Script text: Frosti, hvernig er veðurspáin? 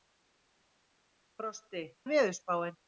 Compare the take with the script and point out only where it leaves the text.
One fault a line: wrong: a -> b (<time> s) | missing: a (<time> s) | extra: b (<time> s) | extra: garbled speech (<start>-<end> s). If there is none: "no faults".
missing: hvernig (1.9 s)